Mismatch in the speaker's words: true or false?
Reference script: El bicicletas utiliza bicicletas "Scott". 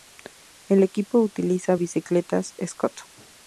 true